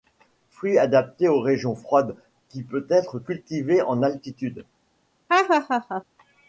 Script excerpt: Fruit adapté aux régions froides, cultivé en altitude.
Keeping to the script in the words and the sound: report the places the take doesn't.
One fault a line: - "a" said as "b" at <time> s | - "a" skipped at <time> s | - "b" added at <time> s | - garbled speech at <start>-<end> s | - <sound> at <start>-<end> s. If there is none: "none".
- "qui peut être" added at 2.5 s
- laugh at 5.3-6.0 s